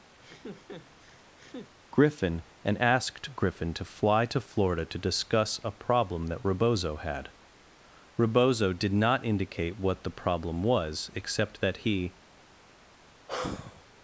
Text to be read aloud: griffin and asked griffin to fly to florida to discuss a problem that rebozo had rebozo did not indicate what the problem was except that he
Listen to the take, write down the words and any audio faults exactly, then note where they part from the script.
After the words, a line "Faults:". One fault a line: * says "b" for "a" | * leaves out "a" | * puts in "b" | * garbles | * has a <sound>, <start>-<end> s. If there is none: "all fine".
griffin and asked griffin to fly to florida to discuss a problem that rebozo had rebozo did not indicate what the problem was except that he
Faults:
* has a laugh, 0.2-1.7 s
* has a sigh, 13.3-13.9 s